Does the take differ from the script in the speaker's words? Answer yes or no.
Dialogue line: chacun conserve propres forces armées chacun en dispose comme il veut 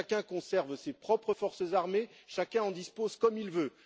yes